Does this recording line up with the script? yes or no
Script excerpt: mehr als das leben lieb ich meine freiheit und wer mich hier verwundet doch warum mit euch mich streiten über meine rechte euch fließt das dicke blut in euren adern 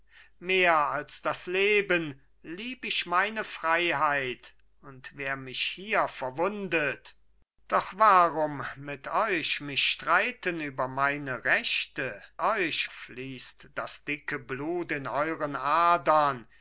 yes